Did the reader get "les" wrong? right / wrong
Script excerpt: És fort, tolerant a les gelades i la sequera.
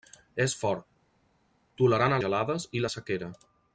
wrong